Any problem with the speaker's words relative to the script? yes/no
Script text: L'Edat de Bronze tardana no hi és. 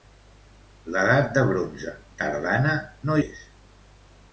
yes